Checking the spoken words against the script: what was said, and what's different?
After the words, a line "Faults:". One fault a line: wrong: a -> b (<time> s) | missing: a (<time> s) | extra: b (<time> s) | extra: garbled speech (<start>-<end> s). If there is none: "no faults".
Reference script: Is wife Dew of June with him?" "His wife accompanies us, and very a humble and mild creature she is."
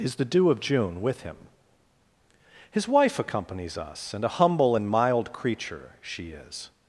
Is the Dew of June with him?" "His wife accompanies us, and a humble and mild creature she is."
Faults:
wrong: wife -> the (0.1 s)
missing: very (4.2 s)